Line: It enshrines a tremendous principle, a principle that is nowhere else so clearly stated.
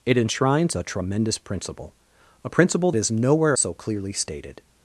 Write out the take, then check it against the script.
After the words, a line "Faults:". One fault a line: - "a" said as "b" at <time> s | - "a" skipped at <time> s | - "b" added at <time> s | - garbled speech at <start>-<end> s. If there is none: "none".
It enshrines a tremendous principle, a principle is nowhere so clearly stated.
Faults:
- "that" skipped at 2.9 s
- "else" skipped at 3.6 s